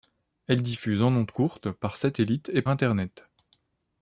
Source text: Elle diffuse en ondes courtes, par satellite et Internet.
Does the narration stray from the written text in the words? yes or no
no